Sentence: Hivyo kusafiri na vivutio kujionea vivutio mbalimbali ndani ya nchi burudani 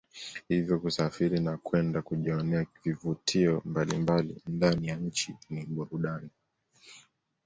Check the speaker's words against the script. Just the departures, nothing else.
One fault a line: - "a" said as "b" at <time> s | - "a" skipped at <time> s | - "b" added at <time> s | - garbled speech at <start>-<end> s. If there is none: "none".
- "vivutio" said as "kwenda" at 1.6 s
- "ni" added at 5.5 s